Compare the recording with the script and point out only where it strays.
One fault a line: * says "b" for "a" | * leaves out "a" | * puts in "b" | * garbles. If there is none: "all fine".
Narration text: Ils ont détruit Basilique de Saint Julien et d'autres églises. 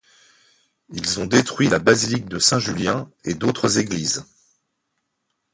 * puts in "la"